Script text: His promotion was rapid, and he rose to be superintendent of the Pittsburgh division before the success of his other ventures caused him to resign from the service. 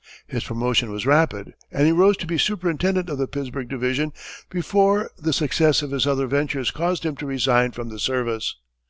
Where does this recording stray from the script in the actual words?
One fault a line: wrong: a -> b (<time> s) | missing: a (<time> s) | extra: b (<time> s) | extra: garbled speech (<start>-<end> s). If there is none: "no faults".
no faults